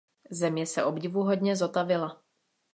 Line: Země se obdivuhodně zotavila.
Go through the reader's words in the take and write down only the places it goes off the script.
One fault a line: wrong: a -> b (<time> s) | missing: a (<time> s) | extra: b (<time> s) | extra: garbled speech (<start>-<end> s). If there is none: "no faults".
no faults